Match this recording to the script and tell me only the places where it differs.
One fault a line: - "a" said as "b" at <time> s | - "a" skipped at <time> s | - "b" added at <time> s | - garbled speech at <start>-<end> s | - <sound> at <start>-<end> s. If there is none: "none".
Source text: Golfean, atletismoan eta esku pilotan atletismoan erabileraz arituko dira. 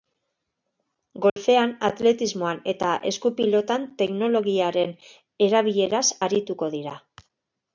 - dropout at 1.3-1.4 s
- "atletismoan" said as "teknologiaren" at 4.0 s